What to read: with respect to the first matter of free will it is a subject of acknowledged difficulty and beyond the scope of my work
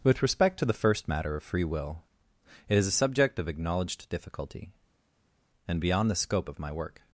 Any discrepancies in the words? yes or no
no